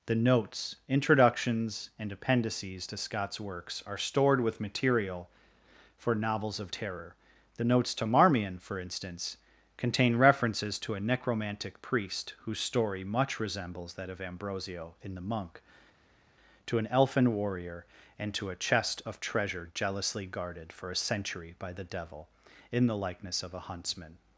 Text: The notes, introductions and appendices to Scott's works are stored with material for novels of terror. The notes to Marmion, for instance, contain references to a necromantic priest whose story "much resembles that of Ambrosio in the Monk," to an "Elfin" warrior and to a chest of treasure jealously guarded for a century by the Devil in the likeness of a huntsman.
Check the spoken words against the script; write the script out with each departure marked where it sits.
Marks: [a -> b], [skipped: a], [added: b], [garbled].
The notes, introductions and appendices to Scott's works are stored with material for novels of terror. The notes to Marmion, for instance, contain references to a necromantic priest whose story "much resembles that of Ambrosio in the Monk," to an "Elfin" warrior and to a chest of treasure jealously guarded for a century by the Devil in the likeness of a huntsman.